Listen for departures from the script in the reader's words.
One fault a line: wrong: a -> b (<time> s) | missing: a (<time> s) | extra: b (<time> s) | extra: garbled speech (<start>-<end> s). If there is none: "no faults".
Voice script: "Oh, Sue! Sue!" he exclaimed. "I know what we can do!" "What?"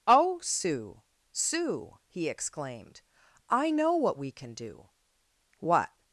no faults